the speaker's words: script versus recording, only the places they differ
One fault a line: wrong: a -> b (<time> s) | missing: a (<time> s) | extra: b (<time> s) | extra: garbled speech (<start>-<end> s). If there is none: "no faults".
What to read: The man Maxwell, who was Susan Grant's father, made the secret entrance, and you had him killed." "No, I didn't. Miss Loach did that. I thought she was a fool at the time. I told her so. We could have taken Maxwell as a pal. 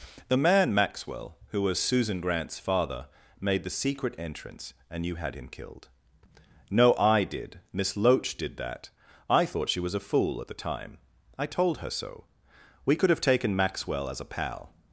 wrong: didn't -> did (7.2 s)